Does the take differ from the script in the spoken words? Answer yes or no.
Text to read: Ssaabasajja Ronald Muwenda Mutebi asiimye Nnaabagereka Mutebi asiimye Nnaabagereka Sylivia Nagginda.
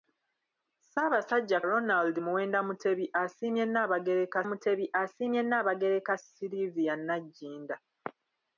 no